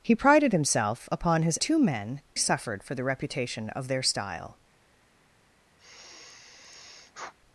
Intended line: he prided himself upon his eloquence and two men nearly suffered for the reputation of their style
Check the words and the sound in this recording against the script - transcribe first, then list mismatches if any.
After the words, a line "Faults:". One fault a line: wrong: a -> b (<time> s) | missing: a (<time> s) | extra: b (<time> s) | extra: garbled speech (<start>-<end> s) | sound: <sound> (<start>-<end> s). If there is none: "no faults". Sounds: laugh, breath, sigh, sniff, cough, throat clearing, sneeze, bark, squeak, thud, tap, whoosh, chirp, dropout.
he prided himself upon his two men suffered for the reputation of their style
Faults:
missing: eloquence and (1.6 s)
missing: nearly (2.2 s)
sound: sigh (5.8-7.3 s)